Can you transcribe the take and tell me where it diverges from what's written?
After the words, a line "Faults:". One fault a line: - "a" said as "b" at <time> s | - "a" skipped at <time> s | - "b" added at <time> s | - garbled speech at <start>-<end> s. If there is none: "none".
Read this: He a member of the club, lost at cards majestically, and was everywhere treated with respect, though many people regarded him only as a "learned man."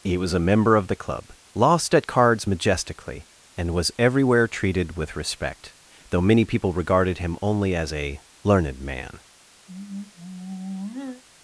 He was a member of the club, lost at cards majestically, and was everywhere treated with respect, though many people regarded him only as a "learned man."
Faults:
- "was" added at 0.2 s